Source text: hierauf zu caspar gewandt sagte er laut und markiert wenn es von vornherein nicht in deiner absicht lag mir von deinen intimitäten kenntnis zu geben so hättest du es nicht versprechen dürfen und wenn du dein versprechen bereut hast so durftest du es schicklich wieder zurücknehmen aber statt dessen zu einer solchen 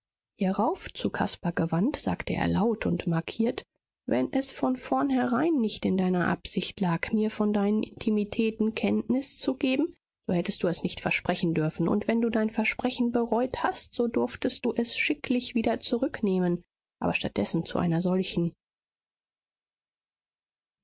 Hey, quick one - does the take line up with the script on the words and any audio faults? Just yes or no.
yes